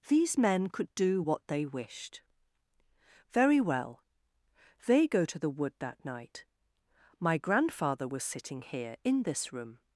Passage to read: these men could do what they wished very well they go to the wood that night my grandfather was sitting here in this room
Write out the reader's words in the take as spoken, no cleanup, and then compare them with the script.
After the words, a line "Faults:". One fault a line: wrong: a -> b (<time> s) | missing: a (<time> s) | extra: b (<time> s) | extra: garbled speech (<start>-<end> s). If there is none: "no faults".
these men could do what they wished very well they go to the wood that night my grandfather was sitting here in this room
Faults:
no faults